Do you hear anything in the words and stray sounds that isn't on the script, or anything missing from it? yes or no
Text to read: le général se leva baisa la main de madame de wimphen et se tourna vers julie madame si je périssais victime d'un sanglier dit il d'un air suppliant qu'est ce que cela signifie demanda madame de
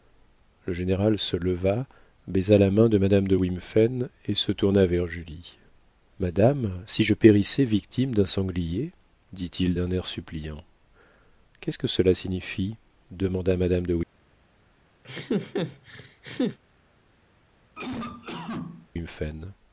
yes